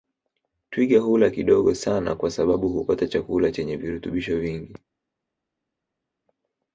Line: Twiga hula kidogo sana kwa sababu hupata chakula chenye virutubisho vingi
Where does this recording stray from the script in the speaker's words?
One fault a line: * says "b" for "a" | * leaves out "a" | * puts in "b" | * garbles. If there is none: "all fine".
all fine